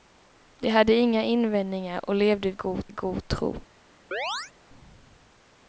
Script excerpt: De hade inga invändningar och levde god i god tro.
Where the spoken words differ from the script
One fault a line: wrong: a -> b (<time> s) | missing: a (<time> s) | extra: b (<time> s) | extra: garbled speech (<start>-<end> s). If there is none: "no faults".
no faults